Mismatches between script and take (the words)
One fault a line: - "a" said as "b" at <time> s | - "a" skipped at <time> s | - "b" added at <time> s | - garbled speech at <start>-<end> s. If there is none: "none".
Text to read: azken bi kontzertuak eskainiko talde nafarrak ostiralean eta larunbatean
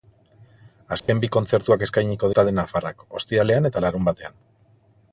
none